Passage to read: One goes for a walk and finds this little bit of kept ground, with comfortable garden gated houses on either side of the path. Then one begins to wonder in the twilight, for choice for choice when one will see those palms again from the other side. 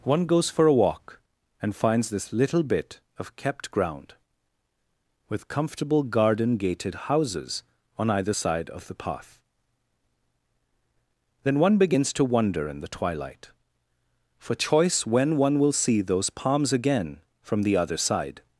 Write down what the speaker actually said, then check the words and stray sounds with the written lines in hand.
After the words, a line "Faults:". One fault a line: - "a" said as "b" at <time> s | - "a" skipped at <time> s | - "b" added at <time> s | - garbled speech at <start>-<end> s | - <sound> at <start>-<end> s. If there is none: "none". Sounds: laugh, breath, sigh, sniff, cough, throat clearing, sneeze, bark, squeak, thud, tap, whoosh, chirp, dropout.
One goes for a walk and finds this little bit of kept ground, with comfortable garden gated houses on either side of the path. Then one begins to wonder in the twilight, for choice when one will see those palms again from the other side.
Faults:
- "for choice" skipped at 15.1 s